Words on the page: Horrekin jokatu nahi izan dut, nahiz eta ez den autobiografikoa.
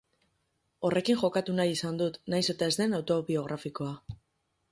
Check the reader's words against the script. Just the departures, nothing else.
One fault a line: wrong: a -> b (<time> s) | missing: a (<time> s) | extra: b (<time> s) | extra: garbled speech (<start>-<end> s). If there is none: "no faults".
no faults